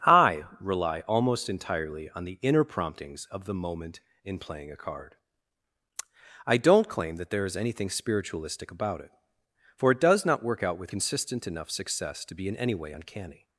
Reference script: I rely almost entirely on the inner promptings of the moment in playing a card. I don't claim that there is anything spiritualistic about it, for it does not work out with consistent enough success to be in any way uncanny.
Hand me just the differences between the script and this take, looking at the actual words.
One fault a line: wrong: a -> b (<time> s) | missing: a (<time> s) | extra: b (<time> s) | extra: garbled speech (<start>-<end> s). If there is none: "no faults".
no faults